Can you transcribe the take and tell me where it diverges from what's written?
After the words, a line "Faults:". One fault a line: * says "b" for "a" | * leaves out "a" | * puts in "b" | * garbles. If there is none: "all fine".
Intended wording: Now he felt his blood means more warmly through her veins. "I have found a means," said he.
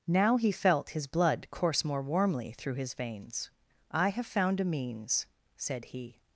Now he felt his blood course more warmly through his veins. "I have found a means," said he.
Faults:
* says "course" for "means"
* says "his" for "her"